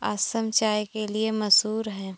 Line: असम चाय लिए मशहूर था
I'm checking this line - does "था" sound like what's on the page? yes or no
no